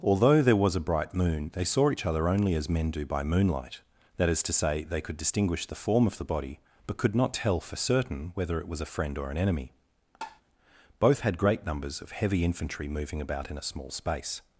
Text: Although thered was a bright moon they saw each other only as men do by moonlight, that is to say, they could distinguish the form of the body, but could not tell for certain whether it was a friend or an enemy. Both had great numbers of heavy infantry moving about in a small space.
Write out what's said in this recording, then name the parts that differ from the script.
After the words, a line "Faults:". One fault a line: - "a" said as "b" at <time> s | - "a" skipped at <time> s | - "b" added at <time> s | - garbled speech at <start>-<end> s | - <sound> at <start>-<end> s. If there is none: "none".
Although there was a bright moon they saw each other only as men do by moonlight, that is to say, they could distinguish the form of the body, but could not tell for certain whether it was a friend or an enemy. Both had great numbers of heavy infantry moving about in a small space.
Faults:
- "thered" said as "there" at 0.4 s
- tap at 10.2-10.4 s